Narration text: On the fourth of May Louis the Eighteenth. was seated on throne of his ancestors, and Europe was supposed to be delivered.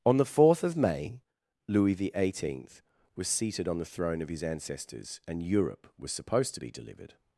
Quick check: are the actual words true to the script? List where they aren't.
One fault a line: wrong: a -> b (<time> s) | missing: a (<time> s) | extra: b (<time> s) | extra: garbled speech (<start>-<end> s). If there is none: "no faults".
extra: the (3.8 s)